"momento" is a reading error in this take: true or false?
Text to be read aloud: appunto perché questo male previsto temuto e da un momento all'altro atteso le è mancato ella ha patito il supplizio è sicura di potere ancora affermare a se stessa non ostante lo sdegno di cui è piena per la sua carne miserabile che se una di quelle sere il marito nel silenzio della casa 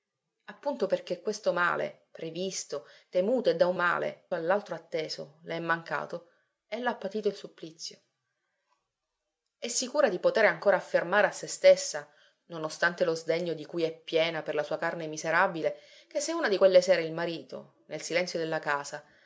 true